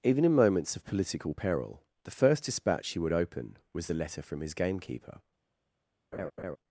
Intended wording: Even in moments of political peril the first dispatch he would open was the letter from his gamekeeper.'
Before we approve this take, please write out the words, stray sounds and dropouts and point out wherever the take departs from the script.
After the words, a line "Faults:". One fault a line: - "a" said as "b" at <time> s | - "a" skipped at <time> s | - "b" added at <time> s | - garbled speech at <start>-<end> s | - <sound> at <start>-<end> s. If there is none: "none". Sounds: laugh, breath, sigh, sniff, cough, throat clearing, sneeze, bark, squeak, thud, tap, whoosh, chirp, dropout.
Even in moments of political peril the first dispatch he would open was the letter from his gamekeeper.'
Faults:
- laugh at 6.1-6.6 s